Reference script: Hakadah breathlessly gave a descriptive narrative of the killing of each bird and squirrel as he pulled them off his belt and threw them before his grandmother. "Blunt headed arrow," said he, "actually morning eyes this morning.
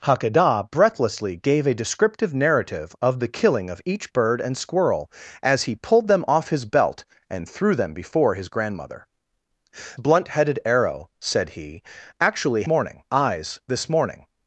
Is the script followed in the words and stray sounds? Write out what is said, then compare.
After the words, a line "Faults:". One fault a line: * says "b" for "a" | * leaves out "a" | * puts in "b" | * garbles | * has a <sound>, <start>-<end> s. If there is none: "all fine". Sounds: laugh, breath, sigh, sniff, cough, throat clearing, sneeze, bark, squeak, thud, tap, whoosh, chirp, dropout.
Hakadah breathlessly gave a descriptive narrative of the killing of each bird and squirrel as he pulled them off his belt and threw them before his grandmother. "Blunt headed arrow," said he, "actually morning eyes this morning.
Faults:
all fine